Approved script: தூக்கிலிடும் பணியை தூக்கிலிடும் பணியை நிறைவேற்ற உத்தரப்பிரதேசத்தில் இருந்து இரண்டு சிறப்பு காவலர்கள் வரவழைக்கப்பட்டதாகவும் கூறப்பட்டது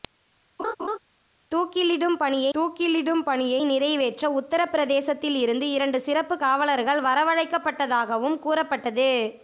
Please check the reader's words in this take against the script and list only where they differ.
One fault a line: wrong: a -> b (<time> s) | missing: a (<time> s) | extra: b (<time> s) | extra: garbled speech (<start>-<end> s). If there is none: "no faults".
no faults